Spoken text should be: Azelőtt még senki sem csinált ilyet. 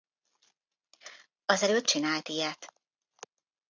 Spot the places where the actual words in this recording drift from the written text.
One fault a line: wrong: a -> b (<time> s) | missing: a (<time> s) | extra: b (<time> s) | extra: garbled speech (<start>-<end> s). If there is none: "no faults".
missing: még senki sem (1.9 s)